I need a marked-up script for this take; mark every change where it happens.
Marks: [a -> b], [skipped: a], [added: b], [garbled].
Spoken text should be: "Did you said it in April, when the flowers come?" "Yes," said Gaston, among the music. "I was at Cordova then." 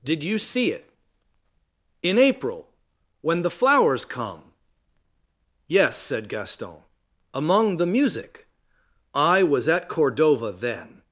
"Did you [said -> see] it in April, when the flowers come?" "Yes," said Gaston, among the music. "I was at Cordova then."